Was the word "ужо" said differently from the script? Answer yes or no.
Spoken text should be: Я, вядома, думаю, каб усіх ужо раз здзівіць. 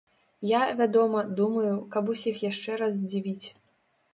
yes